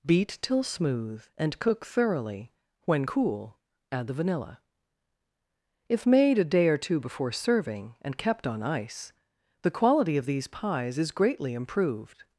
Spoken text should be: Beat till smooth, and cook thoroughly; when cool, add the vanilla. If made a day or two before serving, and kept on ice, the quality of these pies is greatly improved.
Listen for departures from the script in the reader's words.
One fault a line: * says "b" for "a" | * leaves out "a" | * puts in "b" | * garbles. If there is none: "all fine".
all fine